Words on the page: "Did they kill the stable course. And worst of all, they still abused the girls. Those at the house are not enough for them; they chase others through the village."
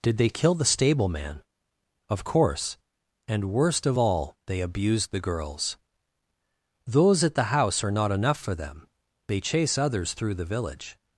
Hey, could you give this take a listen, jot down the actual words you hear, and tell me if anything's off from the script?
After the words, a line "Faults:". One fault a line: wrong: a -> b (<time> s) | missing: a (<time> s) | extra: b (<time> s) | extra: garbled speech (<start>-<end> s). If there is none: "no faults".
"Did they kill the stable man?" "Of course. And worst of all, they abused the girls. Those at the house are not enough for them; they chase others through the village."
Faults:
extra: man Of (1.1 s)
missing: still (4.6 s)